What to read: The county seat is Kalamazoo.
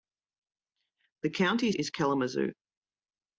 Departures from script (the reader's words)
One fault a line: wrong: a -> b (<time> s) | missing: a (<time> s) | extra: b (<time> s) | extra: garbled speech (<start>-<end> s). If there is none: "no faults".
missing: seat (1.7 s)